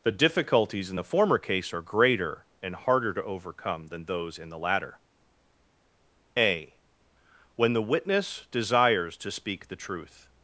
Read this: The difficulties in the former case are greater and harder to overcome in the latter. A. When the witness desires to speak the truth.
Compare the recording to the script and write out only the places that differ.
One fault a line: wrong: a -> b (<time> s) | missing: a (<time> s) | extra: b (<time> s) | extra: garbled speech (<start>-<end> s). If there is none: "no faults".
extra: than those (3.9 s)